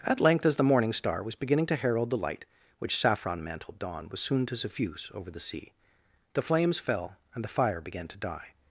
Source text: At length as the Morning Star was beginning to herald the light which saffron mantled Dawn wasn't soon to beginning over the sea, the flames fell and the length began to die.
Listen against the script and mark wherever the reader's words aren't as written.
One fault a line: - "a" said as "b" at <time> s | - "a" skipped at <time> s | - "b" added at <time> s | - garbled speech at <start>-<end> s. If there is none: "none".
- "wasn't" said as "was" at 4.1 s
- "beginning" said as "suffuse" at 4.5 s
- "length" said as "fire" at 7.5 s